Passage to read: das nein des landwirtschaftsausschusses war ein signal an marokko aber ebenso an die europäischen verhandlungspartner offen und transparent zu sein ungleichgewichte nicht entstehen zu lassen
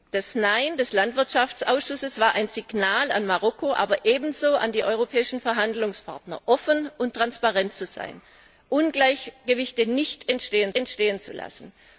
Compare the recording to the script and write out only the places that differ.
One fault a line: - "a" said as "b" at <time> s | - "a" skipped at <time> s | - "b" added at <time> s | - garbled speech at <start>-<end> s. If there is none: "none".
- "entstehen" added at 10.8 s